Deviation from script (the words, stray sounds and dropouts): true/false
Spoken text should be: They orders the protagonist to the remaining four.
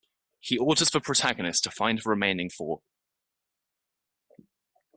true